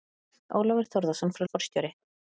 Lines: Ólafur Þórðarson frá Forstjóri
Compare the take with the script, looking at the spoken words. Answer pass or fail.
pass